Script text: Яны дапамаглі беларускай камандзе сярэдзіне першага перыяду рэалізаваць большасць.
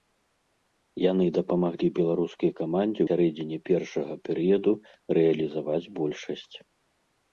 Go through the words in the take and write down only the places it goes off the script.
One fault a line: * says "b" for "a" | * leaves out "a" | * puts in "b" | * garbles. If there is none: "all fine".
all fine